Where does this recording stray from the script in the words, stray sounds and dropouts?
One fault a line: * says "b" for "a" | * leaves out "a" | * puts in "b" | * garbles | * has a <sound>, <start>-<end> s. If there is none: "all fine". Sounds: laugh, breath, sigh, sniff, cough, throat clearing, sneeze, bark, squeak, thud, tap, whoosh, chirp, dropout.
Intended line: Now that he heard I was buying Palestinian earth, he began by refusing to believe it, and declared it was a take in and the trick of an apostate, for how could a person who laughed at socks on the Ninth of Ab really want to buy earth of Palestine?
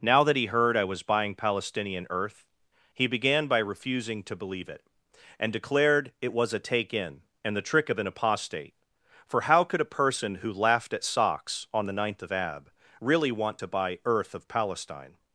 all fine